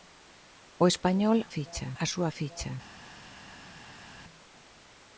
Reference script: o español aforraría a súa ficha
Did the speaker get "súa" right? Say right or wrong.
right